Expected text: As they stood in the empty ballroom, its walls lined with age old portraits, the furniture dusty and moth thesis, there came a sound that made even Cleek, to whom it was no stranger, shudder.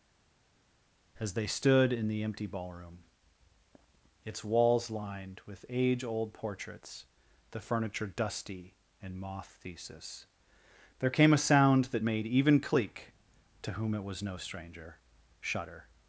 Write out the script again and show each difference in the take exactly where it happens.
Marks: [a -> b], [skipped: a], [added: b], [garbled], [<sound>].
As they stood in the empty ballroom, its walls lined with age old portraits, the furniture dusty and moth thesis, there came a sound that made even Cleek, to whom it was no stranger, shudder.